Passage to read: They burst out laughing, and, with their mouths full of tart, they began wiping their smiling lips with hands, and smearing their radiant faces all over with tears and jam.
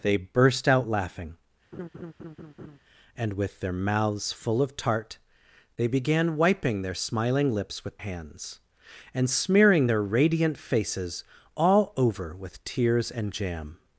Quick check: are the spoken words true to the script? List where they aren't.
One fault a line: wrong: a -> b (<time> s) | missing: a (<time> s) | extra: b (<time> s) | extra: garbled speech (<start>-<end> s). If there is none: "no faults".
no faults